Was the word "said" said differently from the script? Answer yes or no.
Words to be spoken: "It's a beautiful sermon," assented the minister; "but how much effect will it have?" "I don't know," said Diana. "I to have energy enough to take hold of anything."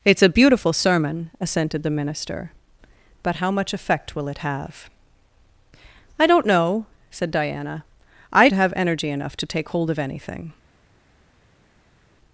no